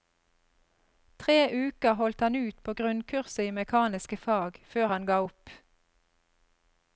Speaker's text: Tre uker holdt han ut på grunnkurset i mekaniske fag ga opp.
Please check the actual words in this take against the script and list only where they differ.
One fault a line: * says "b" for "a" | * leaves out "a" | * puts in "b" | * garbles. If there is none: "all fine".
* puts in "før han"